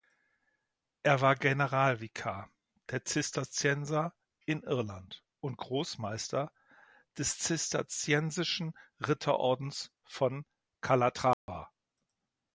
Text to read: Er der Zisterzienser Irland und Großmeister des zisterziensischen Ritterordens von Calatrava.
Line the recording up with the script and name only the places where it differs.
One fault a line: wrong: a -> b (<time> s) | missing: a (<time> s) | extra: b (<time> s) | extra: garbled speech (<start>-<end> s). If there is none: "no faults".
extra: war Generalvikar (1.2 s)
extra: in (4.5 s)